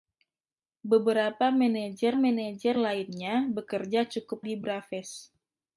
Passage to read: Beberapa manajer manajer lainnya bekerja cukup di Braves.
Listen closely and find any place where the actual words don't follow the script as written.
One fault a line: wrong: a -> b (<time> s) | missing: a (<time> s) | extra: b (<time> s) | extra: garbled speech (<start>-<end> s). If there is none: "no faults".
no faults